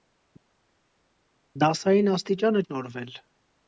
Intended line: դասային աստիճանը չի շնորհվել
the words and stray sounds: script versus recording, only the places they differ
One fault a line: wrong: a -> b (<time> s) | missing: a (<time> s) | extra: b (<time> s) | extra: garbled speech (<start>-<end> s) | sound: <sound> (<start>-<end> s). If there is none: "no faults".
missing: չի (2.6 s)